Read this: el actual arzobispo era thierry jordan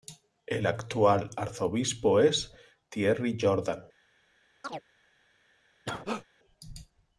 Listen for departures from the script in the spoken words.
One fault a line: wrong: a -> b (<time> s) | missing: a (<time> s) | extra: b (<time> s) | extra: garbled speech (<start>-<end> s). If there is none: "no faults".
wrong: era -> es (2.2 s)